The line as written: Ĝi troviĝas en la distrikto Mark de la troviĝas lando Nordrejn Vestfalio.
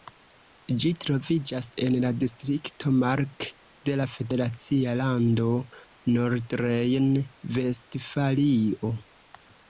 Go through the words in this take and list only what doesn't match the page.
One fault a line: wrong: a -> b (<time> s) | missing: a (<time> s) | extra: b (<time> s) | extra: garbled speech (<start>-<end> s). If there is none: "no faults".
wrong: troviĝas -> federacia (4.1 s)